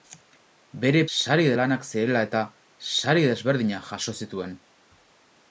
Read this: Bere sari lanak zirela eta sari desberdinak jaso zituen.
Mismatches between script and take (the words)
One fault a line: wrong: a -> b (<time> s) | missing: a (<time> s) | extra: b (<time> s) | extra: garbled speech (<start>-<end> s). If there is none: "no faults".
no faults